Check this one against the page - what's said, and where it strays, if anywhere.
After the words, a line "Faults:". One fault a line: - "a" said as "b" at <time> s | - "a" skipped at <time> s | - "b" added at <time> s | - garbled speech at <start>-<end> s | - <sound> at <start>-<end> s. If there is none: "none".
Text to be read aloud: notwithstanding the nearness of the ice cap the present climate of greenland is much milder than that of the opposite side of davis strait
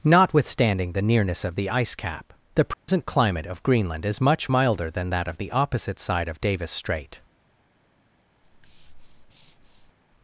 notwithstanding the nearness of the ice cap the present climate of greenland is much milder than that of the opposite side of davis strait
Faults:
- dropout at 2.7-2.9 s
- breath at 8.4-9.9 s